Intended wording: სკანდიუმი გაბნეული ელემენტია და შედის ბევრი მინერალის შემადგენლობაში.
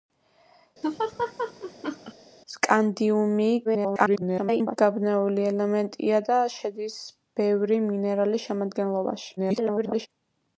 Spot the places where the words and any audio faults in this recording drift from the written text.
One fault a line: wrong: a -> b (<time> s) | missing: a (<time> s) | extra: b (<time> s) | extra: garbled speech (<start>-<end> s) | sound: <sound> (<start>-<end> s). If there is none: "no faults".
sound: laugh (0.8-2.1 s)
extra: garbled speech (3.6-4.8 s)
extra: garbled speech (9.4-10.1 s)